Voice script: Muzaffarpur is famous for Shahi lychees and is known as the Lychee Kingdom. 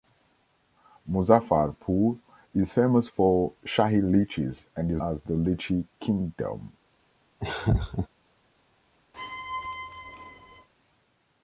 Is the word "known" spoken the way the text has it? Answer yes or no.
no